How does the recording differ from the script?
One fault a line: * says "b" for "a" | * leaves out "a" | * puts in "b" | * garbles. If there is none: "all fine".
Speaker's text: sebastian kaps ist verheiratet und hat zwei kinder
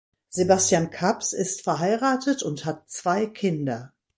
all fine